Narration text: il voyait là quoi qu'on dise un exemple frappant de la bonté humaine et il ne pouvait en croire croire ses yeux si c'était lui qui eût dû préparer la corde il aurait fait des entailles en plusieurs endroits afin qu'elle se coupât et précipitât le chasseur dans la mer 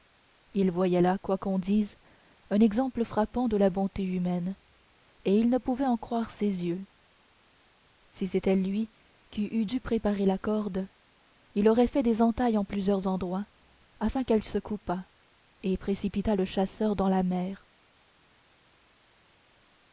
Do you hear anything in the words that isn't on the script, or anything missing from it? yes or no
yes